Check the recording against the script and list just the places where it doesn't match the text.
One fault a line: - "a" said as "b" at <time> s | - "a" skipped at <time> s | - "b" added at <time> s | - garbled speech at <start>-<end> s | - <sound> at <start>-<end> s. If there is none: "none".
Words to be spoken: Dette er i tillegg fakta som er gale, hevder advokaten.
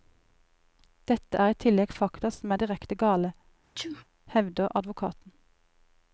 - "direkte" added at 2.6 s
- sneeze at 3.8-4.0 s